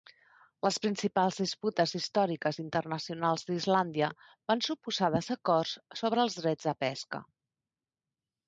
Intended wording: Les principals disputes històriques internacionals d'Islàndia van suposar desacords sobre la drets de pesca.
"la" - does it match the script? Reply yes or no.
no